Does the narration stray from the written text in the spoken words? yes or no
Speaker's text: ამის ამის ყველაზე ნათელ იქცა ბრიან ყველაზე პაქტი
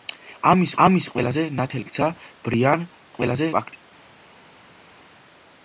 no